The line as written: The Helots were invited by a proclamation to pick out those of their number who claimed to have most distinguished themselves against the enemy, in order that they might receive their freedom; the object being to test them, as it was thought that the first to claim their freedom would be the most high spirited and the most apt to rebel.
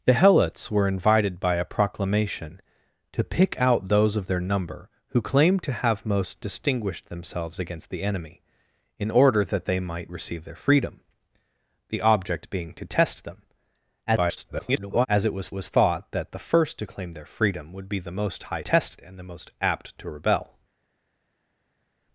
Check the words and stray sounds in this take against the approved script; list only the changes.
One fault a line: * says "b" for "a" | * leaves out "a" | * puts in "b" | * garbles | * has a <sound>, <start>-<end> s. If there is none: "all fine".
* garbles
* puts in "was"
* says "test" for "spirited"